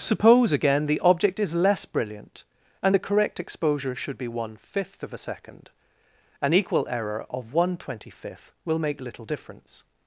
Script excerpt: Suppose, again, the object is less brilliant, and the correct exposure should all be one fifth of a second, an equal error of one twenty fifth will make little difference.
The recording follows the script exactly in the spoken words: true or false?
false